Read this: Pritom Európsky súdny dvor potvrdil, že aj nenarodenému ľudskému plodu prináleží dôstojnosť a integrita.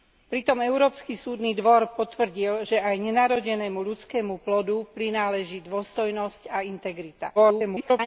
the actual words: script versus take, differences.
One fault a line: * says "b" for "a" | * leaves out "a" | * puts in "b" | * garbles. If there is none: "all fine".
* garbles